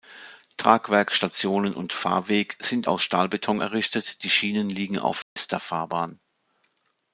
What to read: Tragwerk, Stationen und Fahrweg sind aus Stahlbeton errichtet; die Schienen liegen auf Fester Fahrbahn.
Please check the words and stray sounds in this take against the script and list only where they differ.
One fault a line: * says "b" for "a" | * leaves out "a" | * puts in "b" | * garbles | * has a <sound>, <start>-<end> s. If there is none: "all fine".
* has a dropout, 5.2-5.4 s